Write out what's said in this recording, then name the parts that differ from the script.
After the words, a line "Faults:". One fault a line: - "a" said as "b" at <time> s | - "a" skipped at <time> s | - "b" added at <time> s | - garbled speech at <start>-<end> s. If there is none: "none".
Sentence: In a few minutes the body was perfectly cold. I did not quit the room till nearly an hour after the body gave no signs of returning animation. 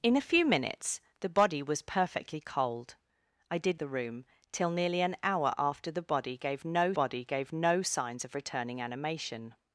In a few minutes the body was perfectly cold. I did the room till nearly an hour after the body gave no body gave no signs of returning animation.
Faults:
- "not quit" skipped at 3.8 s
- "body gave no" added at 7.0 s